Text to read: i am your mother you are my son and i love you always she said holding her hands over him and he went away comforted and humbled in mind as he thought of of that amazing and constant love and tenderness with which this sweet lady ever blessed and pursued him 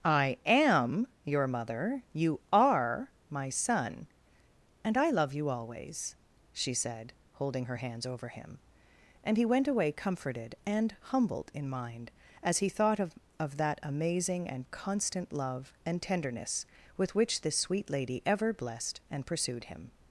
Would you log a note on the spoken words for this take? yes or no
no